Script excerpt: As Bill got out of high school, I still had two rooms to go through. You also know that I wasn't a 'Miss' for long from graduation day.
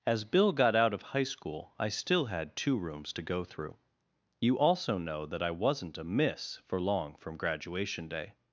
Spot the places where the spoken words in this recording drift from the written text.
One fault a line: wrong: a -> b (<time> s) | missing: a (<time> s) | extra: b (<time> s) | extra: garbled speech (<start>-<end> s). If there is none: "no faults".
no faults